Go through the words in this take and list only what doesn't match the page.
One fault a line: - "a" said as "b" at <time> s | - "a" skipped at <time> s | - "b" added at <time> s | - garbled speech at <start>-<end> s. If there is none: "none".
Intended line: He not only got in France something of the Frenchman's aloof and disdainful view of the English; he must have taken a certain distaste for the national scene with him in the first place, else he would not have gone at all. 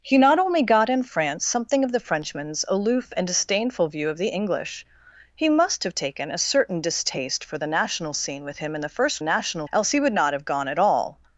- "place" said as "national" at 9.2 s